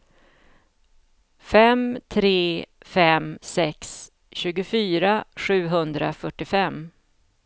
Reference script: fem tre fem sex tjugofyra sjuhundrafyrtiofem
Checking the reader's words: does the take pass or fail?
pass